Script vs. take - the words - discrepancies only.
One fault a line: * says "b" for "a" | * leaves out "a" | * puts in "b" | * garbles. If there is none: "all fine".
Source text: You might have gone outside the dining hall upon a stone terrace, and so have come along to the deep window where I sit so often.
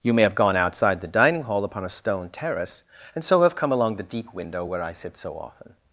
* says "may" for "might"
* leaves out "to"